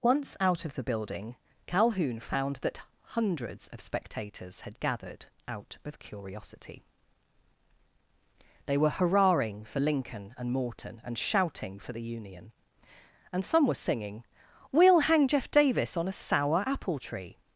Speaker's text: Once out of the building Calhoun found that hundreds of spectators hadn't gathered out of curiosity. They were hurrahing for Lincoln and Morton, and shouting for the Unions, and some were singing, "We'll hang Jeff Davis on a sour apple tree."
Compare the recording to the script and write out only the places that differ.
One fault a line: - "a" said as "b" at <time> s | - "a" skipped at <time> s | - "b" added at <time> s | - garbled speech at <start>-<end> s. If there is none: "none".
- "hadn't" said as "had" at 4.6 s
- "Unions" said as "Union" at 12.0 s